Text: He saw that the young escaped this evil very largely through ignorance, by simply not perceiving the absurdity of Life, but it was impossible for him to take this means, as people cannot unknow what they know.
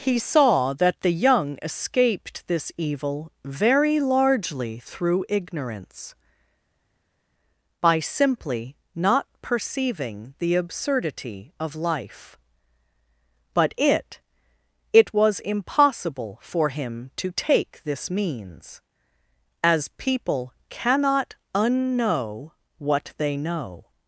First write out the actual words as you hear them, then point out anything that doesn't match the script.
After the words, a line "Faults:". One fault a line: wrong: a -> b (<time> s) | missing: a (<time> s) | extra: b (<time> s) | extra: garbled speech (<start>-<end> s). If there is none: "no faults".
He saw that the young escaped this evil very largely through ignorance, by simply not perceiving the absurdity of Life, but it it was impossible for him to take this means, as people cannot unknow what they know.
Faults:
extra: it (14.9 s)